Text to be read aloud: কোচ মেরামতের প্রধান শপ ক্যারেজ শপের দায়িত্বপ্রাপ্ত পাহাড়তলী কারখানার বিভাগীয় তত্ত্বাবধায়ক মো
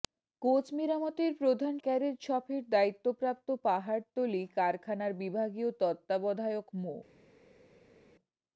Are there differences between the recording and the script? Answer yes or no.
yes